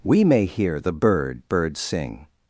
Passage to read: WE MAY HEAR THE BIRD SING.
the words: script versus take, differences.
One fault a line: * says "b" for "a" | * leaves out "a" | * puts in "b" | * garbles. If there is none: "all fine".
* puts in "BIRD"